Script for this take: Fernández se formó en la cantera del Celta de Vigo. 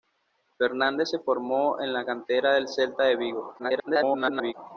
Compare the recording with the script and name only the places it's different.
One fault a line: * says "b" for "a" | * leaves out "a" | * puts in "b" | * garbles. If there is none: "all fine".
* garbles